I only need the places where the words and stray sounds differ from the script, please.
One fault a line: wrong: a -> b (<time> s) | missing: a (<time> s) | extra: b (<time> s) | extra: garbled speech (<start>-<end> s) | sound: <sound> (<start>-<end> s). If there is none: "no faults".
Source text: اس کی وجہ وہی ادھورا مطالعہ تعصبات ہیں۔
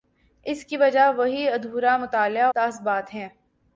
no faults